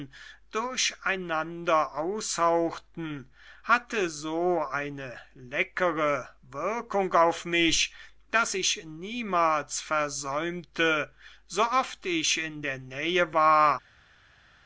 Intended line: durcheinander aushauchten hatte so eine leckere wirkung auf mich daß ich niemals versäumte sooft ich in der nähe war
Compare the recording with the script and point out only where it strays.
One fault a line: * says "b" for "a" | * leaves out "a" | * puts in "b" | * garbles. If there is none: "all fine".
all fine